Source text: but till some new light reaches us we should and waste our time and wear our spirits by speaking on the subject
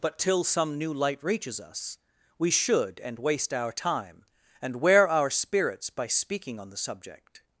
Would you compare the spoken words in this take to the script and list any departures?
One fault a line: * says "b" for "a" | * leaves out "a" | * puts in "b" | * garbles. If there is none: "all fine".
all fine